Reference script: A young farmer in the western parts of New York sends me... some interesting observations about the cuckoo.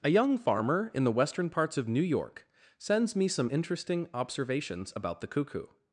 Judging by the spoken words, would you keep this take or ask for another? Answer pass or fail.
pass